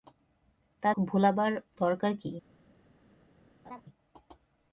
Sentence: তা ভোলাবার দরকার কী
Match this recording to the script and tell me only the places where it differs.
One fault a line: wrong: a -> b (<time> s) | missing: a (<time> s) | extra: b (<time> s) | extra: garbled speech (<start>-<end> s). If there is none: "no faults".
no faults